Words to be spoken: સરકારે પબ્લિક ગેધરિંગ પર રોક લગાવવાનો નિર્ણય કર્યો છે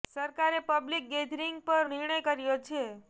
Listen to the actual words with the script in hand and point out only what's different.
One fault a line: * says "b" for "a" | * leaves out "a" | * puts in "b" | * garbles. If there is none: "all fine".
* leaves out "રોક લગાવવાનો"